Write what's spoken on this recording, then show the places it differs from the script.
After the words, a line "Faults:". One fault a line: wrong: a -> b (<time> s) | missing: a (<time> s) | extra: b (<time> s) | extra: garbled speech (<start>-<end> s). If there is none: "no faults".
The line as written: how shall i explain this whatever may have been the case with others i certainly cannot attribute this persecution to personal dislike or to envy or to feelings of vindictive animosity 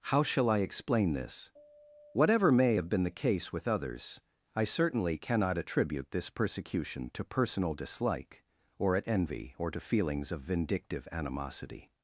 how shall i explain this whatever may have been the case with others i certainly cannot attribute this persecution to personal dislike or at envy or to feelings of vindictive animosity
Faults:
wrong: to -> at (9.0 s)